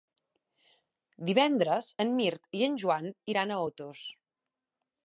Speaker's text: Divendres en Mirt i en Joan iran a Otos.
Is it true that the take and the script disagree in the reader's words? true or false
false